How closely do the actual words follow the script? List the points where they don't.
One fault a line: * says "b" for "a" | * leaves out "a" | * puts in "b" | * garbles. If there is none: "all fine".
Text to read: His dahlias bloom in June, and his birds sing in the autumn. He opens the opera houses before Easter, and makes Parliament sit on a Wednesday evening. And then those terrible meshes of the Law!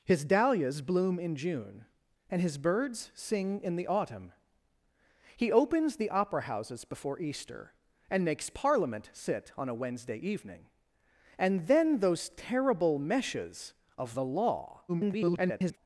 * garbles